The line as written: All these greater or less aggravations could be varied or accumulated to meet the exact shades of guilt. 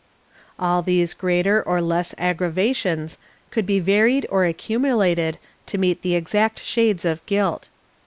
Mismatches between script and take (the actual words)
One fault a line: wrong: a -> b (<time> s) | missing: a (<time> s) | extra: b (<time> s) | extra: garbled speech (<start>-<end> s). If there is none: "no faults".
no faults